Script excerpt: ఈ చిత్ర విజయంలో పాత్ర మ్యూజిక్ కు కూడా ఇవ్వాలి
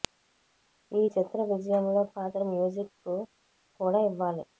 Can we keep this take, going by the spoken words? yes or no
yes